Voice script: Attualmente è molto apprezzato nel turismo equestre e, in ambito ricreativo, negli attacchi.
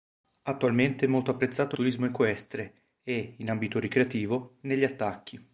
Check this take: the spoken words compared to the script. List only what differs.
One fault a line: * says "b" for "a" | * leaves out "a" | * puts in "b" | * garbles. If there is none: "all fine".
* leaves out "nel"